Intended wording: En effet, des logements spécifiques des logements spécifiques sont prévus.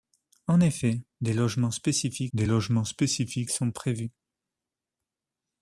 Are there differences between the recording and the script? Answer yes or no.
no